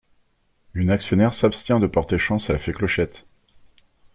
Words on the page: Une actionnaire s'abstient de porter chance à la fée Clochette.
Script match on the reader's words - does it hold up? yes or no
yes